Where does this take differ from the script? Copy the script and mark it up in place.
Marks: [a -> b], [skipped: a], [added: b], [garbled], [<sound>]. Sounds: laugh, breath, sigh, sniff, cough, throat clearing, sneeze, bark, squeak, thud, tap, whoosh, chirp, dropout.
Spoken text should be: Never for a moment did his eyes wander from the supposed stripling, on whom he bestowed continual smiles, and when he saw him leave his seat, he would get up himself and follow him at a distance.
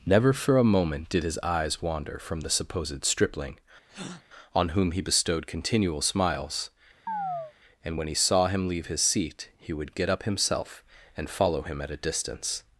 Never for a moment did his eyes wander from the supposed stripling, [breath] on whom he bestowed continual smiles, [chirp] and when he saw him leave his seat, he would get up himself and follow him at a distance.